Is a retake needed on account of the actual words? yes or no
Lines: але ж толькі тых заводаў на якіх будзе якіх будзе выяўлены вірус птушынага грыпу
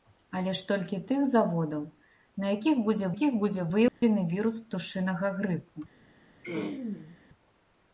no